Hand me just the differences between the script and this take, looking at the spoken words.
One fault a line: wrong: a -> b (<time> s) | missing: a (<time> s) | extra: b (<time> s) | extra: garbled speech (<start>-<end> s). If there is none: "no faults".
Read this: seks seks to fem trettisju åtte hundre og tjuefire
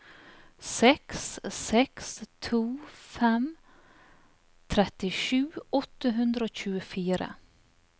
no faults